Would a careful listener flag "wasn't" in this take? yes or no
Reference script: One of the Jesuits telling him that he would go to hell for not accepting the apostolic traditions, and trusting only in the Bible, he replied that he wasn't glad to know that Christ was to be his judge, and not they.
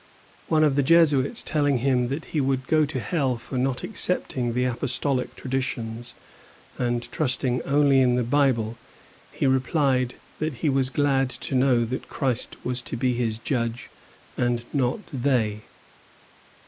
yes